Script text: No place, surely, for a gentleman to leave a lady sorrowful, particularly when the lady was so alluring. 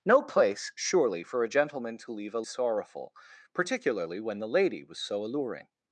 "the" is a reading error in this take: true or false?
false